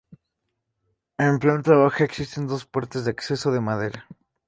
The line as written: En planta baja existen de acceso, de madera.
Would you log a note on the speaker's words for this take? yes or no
yes